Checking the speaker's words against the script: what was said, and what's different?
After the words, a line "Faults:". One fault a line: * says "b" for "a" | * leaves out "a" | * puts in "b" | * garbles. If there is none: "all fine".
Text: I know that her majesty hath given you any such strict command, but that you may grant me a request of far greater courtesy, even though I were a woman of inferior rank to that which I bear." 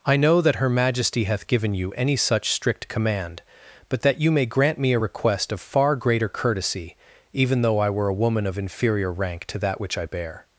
I know that her majesty hath given you any such strict command, but that you may grant me a request of far greater courtesy, even though I were a woman of inferior rank to that which I bear."
Faults:
all fine